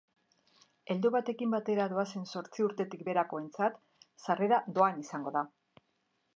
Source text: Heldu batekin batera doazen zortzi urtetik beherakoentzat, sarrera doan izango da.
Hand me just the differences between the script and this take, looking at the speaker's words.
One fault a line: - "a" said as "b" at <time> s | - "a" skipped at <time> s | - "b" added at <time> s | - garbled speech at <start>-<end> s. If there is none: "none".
none